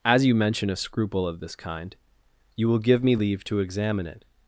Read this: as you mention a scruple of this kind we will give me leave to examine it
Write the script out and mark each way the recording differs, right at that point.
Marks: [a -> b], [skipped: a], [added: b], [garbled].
as you mention a scruple of this kind [we -> you] will give me leave to examine it